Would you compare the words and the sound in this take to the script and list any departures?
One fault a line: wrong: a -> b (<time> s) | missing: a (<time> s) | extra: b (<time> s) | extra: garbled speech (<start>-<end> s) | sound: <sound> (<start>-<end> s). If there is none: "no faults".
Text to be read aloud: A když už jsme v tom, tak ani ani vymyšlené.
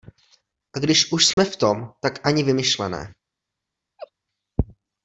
sound: dropout (1.3-1.4 s)
missing: ani (2.4 s)
sound: laugh (4.0-4.1 s)